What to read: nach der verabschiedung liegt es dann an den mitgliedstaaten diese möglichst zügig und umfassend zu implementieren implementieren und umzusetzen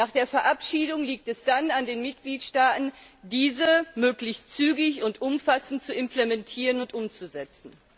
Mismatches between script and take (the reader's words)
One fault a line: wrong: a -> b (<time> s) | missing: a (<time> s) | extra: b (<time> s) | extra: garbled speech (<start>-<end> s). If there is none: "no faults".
missing: implementieren (6.8 s)